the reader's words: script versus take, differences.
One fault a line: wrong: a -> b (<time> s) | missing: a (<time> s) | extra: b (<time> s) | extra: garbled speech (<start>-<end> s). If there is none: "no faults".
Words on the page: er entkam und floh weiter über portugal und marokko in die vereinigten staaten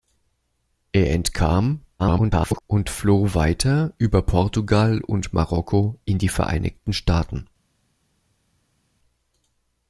extra: garbled speech (2.0-2.6 s)